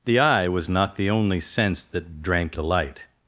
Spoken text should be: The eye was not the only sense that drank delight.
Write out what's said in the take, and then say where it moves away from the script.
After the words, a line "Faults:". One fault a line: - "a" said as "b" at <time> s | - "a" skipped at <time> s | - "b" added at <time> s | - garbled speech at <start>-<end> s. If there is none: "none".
The eye was not the only sense that drank delight.
Faults:
none